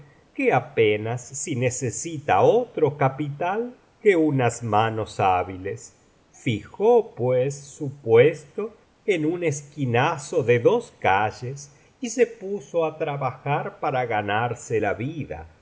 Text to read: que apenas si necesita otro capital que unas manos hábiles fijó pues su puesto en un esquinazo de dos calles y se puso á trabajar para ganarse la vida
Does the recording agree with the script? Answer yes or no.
yes